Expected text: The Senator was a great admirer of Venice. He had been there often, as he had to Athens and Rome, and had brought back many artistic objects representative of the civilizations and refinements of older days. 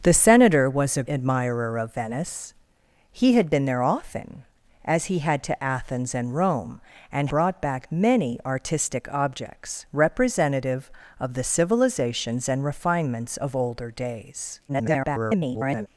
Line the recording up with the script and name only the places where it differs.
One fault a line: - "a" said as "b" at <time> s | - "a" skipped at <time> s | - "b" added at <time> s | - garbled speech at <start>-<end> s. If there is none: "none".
- "great" skipped at 1.0 s
- "had" skipped at 7.3 s
- garbled speech at 14.7-15.9 s